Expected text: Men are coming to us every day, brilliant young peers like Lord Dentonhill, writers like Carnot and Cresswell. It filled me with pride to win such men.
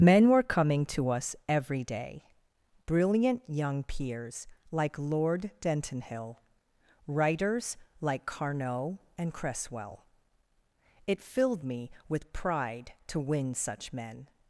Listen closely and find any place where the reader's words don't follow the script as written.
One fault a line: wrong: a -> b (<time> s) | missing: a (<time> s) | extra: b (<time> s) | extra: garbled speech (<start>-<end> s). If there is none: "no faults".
wrong: are -> were (0.3 s)